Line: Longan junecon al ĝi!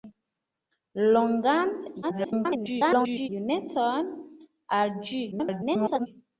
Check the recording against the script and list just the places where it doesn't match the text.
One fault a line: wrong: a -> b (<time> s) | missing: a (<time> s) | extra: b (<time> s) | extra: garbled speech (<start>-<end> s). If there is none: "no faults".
extra: garbled speech (2.0-3.3 s)
extra: garbled speech (5.3-6.1 s)